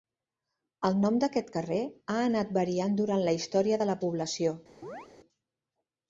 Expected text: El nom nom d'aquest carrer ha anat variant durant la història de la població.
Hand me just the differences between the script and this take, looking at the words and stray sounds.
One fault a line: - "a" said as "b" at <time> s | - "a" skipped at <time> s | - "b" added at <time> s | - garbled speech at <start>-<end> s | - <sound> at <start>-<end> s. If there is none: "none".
- "nom" skipped at 1.2 s
- chirp at 4.8-5.1 s